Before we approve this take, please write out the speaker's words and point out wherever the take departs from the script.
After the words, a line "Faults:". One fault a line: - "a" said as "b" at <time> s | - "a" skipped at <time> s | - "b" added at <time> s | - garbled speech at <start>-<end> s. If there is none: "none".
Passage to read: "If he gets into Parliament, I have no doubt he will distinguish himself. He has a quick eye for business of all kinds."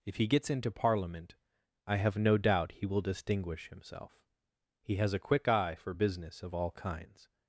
"If he gets into Parliament, I have no doubt he will distinguish himself. He has a quick eye for business of all kinds."
Faults:
none